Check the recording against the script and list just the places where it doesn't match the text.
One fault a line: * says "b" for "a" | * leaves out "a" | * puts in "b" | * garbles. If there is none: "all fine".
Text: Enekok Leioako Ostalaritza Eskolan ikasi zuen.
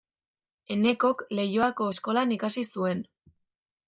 * leaves out "Ostalaritza"